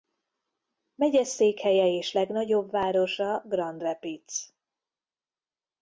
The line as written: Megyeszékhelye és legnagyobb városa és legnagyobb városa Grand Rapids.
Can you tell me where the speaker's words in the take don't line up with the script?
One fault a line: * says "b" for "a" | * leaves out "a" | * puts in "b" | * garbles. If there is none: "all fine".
* leaves out "és legnagyobb városa"